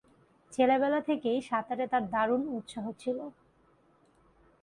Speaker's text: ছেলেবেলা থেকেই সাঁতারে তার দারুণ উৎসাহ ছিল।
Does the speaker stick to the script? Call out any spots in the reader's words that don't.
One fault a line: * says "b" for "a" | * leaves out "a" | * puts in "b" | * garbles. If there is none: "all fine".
all fine